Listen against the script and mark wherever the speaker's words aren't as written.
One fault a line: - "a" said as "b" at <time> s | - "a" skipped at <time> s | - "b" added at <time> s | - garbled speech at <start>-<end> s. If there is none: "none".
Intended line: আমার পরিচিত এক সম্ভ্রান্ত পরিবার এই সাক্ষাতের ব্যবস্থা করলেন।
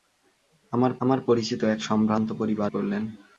- "আমার" added at 1.0 s
- "এই সাক্ষাতের ব্যবস্থা" skipped at 2.7 s